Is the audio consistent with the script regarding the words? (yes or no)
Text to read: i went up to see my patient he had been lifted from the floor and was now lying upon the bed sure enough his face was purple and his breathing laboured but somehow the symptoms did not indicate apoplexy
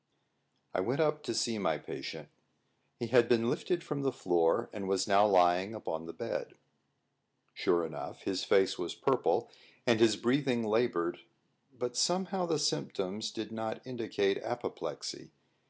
yes